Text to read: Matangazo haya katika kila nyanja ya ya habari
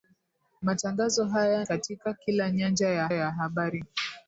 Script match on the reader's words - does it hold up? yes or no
yes